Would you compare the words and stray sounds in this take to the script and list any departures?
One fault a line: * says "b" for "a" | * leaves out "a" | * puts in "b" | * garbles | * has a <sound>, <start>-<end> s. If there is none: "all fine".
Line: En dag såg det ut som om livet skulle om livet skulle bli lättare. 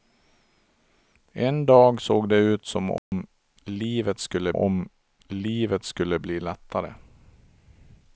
* has a dropout, 3.0-3.1 s